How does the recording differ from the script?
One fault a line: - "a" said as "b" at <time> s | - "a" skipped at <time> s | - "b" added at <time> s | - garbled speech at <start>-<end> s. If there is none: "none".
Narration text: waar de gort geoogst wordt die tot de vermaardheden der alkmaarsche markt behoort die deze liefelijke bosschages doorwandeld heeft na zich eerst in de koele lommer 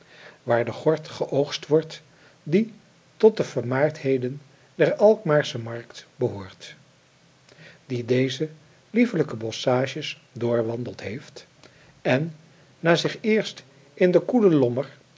- "en" added at 12.0 s